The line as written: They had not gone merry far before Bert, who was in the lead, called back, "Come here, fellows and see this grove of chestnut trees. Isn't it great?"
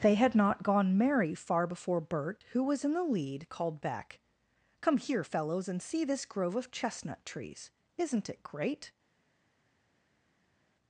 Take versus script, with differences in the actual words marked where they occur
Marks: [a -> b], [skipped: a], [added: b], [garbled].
They had not gone merry far before Bert, who was in the lead, called back, "Come here, fellows and see this grove of chestnut trees. Isn't it great?"